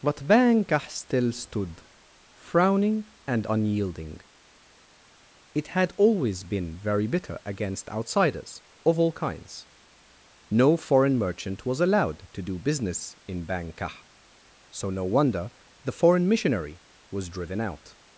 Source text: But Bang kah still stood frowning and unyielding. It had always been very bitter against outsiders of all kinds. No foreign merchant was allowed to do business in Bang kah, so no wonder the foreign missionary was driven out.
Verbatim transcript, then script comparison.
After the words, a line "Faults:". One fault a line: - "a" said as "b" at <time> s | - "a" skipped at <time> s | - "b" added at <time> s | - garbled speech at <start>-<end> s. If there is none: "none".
But Bang kah still stood frowning and unyielding. It had always been very bitter against outsiders of all kinds. No foreign merchant was allowed to do business in Bang kah, so no wonder the foreign missionary was driven out.
Faults:
none